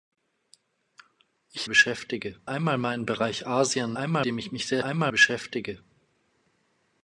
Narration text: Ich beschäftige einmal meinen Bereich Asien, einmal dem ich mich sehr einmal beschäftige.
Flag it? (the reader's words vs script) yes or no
no